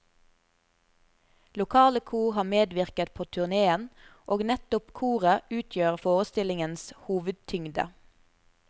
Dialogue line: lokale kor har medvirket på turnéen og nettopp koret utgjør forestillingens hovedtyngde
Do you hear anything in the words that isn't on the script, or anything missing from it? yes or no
no